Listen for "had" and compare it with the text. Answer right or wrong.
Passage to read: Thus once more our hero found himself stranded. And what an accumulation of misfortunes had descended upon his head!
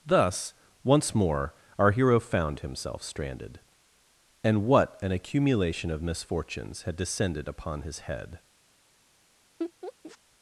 right